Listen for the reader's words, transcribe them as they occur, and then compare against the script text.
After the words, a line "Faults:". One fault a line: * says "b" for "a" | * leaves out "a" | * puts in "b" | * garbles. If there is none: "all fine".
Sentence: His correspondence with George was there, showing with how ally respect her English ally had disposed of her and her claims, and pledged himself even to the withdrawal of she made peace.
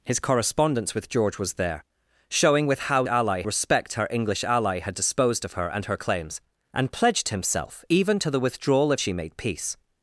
His correspondence with George was there, showing with how ally respect her English ally had disposed of her and her claims, and pledged himself even to the withdrawal of she made peace.
Faults:
all fine